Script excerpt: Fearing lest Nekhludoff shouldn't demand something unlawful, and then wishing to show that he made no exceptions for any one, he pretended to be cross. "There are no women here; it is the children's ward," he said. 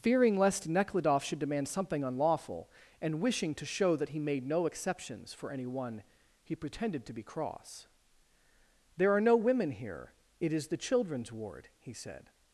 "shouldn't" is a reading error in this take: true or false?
true